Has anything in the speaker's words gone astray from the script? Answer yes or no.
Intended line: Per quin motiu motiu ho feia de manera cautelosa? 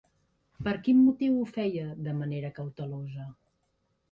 yes